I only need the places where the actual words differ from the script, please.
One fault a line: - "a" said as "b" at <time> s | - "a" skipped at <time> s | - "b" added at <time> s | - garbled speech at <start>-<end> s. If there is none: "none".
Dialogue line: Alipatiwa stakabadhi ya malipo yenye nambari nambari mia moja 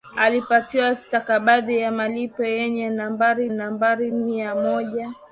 none